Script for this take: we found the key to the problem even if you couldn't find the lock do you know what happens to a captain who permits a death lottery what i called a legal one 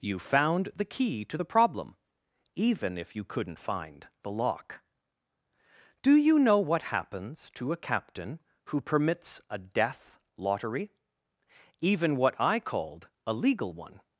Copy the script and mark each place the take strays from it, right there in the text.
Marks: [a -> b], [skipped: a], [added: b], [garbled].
[we -> you] found the key to the problem even if you couldn't find the lock do you know what happens to a captain who permits a death lottery [added: even] what i called a legal one